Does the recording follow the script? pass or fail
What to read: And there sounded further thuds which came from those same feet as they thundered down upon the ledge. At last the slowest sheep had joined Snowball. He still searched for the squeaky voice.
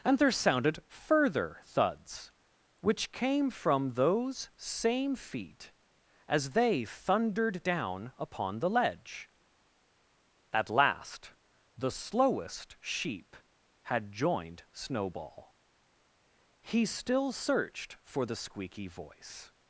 pass